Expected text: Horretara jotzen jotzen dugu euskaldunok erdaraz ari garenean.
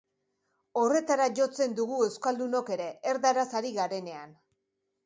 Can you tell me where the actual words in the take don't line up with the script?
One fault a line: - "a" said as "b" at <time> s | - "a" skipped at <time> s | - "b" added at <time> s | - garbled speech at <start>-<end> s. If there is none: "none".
- "jotzen" skipped at 1.8 s
- "ere" added at 2.8 s